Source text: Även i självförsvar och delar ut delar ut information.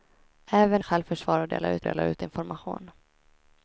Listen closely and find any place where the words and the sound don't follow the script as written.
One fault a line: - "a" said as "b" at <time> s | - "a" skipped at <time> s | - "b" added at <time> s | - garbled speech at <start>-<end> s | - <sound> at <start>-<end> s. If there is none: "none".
none